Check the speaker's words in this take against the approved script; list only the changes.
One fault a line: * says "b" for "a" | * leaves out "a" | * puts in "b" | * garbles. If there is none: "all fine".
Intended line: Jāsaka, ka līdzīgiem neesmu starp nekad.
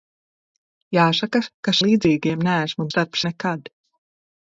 all fine